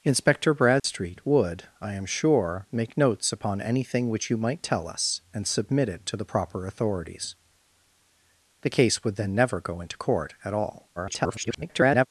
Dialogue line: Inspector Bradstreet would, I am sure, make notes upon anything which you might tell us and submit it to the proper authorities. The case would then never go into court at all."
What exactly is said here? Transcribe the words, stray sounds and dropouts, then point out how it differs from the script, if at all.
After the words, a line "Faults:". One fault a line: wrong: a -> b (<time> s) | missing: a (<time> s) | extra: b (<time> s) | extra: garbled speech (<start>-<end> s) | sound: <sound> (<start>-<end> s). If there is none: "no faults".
Inspector Bradstreet would, I am sure, make notes upon anything which you might tell us and submit it to the proper authorities. The case would then never go into court at all." [garbled]
Faults:
sound: dropout (0.8-0.8 s)
extra: garbled speech (11.0-12.1 s)